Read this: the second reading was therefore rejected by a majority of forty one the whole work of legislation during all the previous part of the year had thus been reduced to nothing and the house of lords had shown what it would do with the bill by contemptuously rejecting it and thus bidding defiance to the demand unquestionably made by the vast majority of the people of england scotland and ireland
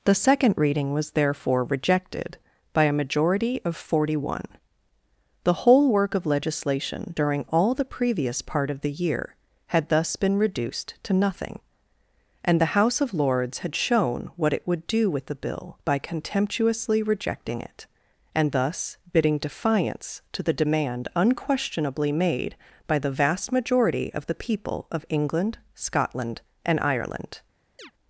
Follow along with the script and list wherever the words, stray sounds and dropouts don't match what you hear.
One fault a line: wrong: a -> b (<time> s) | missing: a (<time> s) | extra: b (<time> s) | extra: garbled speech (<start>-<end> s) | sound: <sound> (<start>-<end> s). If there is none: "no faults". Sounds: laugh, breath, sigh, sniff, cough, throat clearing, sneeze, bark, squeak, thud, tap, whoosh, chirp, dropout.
sound: chirp (27.8-27.9 s)